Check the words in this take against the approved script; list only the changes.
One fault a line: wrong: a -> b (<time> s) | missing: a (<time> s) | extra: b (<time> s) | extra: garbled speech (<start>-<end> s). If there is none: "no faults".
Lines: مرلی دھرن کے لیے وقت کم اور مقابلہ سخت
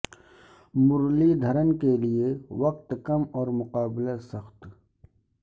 no faults